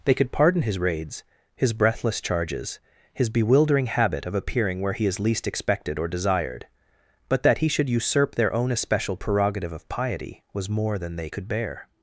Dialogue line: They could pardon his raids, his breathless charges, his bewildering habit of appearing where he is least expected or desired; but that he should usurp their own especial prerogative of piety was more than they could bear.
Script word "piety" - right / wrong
right